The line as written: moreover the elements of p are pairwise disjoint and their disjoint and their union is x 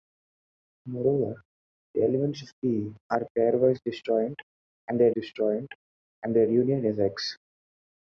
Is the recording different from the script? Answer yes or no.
no